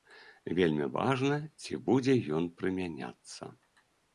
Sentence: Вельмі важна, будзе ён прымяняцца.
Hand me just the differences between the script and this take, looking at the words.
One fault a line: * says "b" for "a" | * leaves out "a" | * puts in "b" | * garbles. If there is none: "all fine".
* puts in "ці"